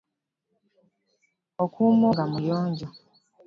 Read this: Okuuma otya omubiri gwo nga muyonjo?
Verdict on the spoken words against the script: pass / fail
fail